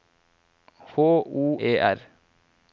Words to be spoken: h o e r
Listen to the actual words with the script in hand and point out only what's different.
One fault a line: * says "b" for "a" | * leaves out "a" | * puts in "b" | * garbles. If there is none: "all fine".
all fine